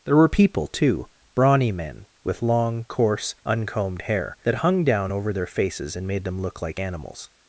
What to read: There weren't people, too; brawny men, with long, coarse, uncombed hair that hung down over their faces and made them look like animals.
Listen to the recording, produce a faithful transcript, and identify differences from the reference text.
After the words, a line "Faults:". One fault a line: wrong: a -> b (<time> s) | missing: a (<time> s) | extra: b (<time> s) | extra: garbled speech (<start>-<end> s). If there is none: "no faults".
There were people, too; brawny men, with long, coarse, uncombed hair that hung down over their faces and made them look like animals.
Faults:
wrong: weren't -> were (0.1 s)